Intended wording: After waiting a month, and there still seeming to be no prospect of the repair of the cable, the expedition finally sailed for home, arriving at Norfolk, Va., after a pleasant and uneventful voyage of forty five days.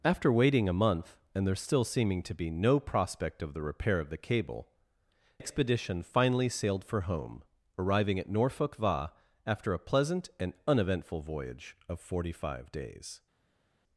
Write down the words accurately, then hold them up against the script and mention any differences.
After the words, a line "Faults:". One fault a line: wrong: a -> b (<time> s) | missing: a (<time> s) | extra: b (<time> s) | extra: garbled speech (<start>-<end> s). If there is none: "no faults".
After waiting a month, and there still seeming to be no prospect of the repair of the cable, expedition finally sailed for home, arriving at Norfolk, Va., after a pleasant and uneventful voyage of forty five days.
Faults:
missing: the (4.7 s)